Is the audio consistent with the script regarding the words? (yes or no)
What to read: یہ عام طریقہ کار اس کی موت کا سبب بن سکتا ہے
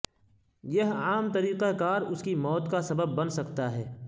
yes